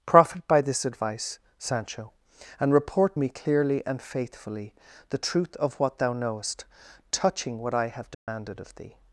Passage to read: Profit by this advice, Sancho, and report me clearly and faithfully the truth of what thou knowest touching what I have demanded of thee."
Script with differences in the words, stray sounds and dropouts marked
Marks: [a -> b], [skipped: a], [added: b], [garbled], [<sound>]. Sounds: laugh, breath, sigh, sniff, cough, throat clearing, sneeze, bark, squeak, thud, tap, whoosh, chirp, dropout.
Profit by this advice, Sancho, and report me clearly and faithfully the truth of what thou knowest touching what I have demanded [dropout] of thee."